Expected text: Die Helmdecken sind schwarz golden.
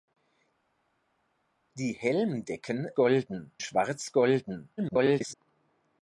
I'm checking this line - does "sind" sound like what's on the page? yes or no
no